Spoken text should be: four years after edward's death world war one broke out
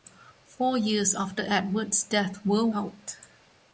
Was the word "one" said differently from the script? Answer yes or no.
yes